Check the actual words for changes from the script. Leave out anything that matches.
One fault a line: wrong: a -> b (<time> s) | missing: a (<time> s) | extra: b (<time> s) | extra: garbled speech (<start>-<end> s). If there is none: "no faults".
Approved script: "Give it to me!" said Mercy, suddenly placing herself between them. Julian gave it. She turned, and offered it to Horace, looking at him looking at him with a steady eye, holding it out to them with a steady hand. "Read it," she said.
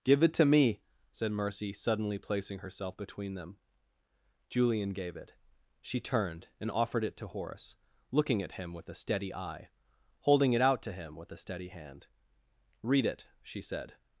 missing: looking at him (8.7 s)
wrong: them -> him (10.9 s)